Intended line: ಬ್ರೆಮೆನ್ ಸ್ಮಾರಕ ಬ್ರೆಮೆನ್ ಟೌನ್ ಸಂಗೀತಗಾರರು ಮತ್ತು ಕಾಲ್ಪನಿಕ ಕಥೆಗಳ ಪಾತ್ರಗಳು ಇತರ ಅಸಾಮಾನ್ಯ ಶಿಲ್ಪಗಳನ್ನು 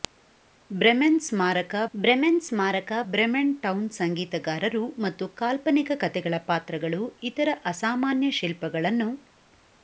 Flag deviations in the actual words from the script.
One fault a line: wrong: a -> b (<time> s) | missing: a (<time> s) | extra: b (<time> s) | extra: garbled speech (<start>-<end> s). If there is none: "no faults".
extra: ಸ್ಮಾರಕ ಬ್ರೆಮೆನ್ (2.4 s)